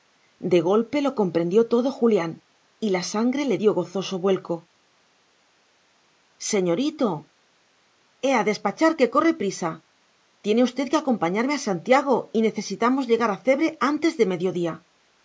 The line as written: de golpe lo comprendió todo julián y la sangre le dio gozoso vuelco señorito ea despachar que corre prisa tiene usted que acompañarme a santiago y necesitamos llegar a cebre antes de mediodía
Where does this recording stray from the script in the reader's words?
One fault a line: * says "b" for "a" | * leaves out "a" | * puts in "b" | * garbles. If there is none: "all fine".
all fine